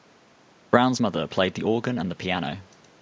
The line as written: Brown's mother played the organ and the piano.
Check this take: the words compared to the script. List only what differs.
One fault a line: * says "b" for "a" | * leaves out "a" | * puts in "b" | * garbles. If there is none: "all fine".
all fine